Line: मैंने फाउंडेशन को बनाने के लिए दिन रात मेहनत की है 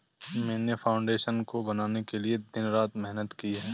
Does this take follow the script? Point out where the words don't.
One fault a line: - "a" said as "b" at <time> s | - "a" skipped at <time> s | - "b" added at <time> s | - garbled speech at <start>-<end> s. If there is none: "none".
none